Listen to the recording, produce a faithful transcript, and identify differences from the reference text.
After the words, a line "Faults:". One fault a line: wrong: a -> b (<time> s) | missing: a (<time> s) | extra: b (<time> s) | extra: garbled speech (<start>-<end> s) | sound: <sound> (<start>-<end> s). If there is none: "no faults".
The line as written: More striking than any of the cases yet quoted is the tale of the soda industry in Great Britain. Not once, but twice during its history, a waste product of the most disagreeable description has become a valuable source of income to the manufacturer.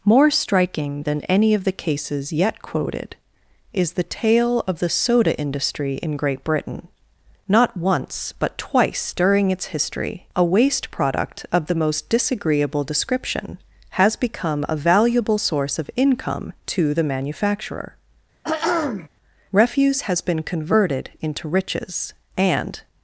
More striking than any of the cases yet quoted is the tale of the soda industry in Great Britain. Not once, but twice during its history, a waste product of the most disagreeable description has become a valuable source of income to the manufacturer. Refuse has been converted into riches, and
Faults:
sound: throat clearing (18.4-19.1 s)
extra: Refuse has been converted into riches and (19.5 s)